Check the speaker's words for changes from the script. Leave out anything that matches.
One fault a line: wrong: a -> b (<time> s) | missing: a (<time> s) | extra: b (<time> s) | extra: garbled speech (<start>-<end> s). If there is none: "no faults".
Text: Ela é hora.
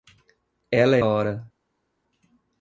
no faults